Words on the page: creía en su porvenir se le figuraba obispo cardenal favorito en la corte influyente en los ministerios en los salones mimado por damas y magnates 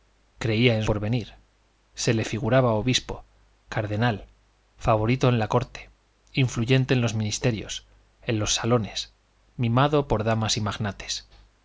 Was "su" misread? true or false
true